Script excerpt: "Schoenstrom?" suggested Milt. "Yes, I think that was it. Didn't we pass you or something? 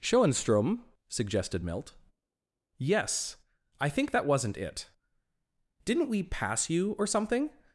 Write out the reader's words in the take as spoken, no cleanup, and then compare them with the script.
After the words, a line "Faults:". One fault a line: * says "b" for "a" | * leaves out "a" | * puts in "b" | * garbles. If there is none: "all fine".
"Schoenstrom?" suggested Milt. "Yes, I think that wasn't it. Didn't we pass you or something?
Faults:
* says "wasn't" for "was"